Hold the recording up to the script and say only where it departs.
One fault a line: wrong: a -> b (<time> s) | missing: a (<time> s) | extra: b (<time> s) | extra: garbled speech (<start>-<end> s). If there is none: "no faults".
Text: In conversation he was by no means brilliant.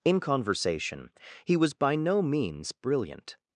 no faults